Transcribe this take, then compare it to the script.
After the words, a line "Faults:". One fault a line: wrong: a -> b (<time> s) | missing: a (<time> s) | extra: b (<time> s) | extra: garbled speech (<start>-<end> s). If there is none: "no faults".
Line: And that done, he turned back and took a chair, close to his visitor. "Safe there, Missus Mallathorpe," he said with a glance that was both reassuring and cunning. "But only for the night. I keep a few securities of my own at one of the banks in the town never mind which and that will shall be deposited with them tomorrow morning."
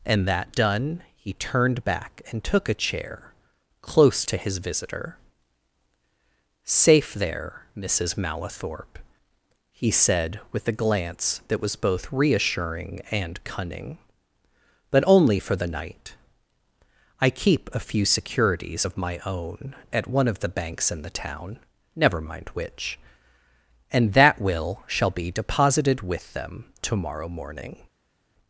And that done, he turned back and took a chair, close to his visitor. "Safe there, Missus Mallathorpe," he said with a glance that was both reassuring and cunning. "But only for the night. I keep a few securities of my own at one of the banks in the town never mind which and that will shall be deposited with them tomorrow morning."
Faults:
no faults